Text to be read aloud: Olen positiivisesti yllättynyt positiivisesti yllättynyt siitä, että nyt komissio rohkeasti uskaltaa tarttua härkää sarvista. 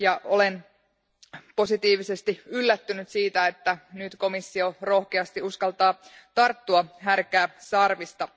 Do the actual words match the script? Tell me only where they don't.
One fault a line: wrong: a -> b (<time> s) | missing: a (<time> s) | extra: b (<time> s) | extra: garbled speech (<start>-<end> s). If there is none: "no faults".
missing: positiivisesti yllättynyt (3.1 s)